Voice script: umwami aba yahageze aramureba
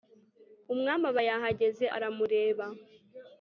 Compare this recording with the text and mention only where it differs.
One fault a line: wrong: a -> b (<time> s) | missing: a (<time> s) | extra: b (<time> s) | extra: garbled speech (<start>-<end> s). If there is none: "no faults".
no faults